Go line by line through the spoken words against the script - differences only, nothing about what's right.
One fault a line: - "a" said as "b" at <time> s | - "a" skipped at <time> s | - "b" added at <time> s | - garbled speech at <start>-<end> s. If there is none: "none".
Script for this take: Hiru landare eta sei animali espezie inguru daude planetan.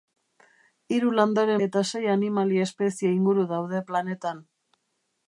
none